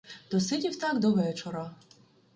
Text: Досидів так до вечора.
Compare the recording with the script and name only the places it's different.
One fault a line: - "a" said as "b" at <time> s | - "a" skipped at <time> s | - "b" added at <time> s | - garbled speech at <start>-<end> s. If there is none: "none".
none